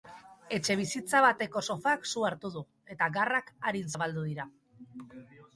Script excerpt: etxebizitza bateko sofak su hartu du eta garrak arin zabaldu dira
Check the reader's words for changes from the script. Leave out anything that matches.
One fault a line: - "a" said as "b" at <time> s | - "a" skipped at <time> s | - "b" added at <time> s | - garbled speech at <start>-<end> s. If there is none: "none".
none